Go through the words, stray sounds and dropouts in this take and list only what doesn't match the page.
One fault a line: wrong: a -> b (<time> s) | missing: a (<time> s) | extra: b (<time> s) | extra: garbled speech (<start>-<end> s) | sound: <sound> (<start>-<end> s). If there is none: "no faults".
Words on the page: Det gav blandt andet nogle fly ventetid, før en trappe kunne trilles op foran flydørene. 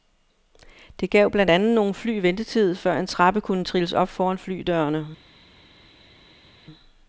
no faults